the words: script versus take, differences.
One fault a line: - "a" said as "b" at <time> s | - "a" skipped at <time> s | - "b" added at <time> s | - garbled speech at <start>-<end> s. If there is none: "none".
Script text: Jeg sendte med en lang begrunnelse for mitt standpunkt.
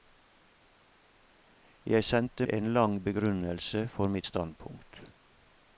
- "med" skipped at 2.5 s